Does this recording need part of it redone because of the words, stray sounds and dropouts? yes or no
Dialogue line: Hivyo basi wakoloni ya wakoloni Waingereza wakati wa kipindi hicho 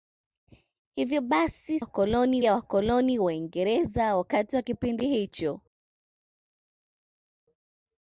no